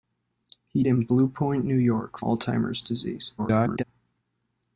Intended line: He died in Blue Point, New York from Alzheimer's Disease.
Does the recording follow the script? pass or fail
fail